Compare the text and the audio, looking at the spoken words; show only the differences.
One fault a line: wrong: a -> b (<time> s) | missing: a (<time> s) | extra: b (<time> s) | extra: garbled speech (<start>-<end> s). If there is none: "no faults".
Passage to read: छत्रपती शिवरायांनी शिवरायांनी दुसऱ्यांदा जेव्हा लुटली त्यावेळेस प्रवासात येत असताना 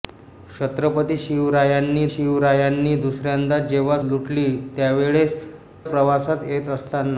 no faults